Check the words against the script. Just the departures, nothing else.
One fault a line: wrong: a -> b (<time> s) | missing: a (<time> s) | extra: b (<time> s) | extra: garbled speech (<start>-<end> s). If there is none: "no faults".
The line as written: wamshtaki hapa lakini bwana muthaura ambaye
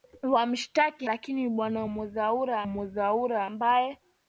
missing: hapa (1.1 s)
extra: muthaura (2.6 s)